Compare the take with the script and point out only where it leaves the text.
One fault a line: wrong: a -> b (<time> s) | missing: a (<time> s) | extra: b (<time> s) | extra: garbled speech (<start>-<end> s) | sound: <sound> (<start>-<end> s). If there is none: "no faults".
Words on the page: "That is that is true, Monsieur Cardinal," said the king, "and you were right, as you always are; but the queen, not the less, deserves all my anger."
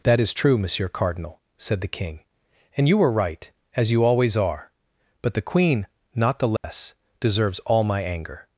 missing: that is (0.3 s)
sound: dropout (6.6-6.6 s)